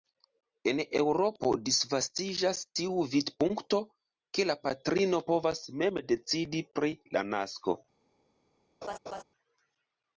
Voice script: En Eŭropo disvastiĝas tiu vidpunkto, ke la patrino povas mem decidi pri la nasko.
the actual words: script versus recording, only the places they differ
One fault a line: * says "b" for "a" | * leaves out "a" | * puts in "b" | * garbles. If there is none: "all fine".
all fine